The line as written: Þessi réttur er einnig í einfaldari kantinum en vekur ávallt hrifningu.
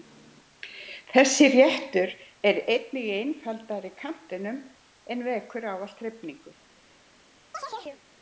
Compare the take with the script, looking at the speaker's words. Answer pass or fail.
pass